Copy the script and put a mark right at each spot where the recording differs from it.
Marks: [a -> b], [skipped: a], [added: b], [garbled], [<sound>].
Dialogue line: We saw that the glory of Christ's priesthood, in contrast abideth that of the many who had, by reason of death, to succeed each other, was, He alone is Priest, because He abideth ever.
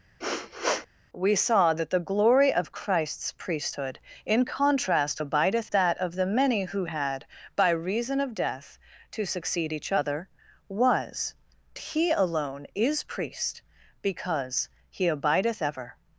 [sniff] We saw that the glory of Christ's priesthood, in contrast abideth that of the many who had, by reason of death, to succeed each other, was, He alone is Priest, because He abideth ever.